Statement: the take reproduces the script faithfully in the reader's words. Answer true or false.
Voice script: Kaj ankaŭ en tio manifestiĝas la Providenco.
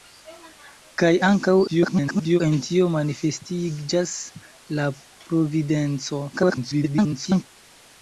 false